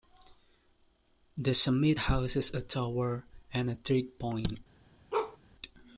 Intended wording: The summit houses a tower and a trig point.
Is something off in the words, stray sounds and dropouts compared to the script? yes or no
yes